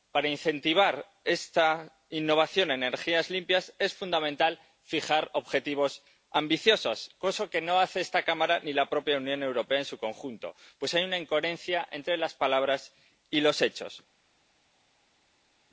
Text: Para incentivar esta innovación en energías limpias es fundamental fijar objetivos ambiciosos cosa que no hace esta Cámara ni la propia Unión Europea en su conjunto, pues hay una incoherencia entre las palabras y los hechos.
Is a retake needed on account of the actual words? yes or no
no